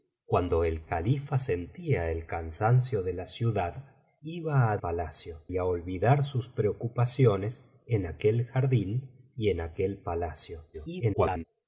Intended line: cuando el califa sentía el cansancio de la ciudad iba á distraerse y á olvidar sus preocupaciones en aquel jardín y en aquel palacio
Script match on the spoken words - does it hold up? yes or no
no